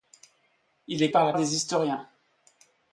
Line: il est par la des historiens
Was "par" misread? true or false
false